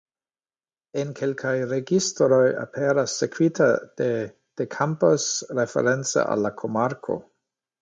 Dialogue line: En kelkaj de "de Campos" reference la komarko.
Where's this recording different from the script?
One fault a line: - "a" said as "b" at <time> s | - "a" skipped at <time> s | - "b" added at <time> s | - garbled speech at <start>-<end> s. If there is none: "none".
- "registroj aperas sekvita" added at 1.7 s
- "al" added at 6.4 s